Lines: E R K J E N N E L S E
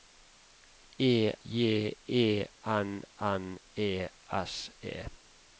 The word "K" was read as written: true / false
false